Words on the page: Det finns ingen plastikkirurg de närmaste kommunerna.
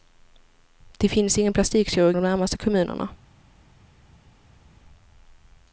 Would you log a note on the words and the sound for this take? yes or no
no